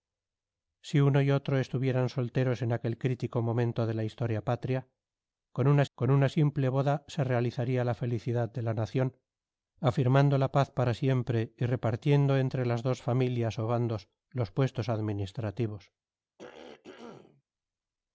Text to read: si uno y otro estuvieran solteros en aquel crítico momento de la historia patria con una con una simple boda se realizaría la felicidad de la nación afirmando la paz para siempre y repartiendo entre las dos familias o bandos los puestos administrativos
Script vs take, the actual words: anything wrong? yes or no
no